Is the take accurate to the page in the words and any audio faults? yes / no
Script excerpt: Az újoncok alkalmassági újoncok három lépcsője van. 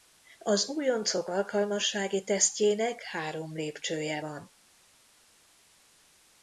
no